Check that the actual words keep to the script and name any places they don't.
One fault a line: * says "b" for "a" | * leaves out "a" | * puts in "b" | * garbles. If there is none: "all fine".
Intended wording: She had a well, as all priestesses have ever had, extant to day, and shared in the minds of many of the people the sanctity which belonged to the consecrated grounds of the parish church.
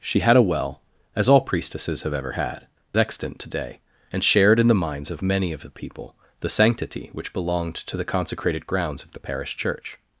all fine